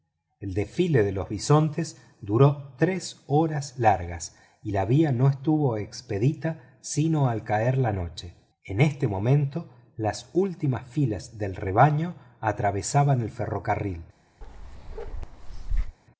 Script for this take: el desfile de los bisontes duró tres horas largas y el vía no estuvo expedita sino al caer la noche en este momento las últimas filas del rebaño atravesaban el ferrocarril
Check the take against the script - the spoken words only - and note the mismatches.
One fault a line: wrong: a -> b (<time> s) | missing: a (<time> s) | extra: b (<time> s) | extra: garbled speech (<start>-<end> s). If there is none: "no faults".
wrong: el -> la (4.7 s)